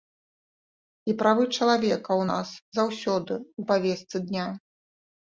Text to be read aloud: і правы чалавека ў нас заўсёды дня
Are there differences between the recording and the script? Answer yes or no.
yes